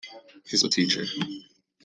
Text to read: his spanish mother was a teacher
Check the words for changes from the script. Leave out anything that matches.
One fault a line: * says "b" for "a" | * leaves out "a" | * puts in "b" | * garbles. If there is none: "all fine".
* leaves out "spanish mother was"